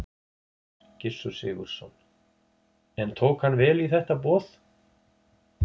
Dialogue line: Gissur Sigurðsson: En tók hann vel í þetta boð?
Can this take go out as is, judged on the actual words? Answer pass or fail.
pass